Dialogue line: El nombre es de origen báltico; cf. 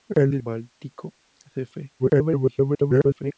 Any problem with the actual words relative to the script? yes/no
yes